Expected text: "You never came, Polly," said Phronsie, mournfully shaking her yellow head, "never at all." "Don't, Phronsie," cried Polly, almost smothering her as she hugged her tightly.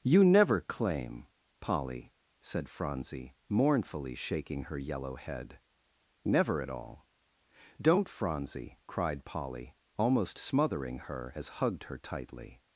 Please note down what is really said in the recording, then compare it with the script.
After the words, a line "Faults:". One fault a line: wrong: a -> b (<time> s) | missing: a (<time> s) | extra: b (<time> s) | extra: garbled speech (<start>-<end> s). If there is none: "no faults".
"You never claim, Polly," said Phronsie, mournfully shaking her yellow head, "never at all." "Don't, Phronsie," cried Polly, almost smothering her as hugged her tightly.
Faults:
wrong: came -> claim (0.6 s)
missing: she (11.5 s)